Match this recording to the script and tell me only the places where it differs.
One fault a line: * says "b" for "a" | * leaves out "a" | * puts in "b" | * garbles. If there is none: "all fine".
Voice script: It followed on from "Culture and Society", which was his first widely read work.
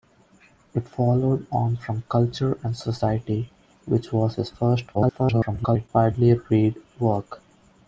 * garbles